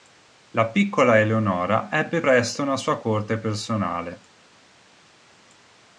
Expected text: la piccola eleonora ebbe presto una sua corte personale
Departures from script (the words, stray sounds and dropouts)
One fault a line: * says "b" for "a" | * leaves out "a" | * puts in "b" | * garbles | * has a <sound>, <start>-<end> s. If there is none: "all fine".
all fine